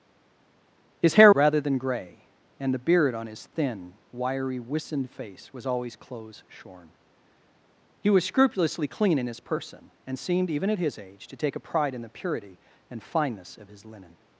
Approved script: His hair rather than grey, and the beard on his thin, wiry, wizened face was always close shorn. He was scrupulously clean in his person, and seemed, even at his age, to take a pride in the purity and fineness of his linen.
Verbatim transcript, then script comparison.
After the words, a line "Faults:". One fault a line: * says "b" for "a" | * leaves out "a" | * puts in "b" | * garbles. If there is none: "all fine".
His hair rather than grey, and the beard on his thin, wiry, wizened face was always close shorn. He was scrupulously clean in his person, and seemed, even at his age, to take a pride in the purity and fineness of his linen.
Faults:
all fine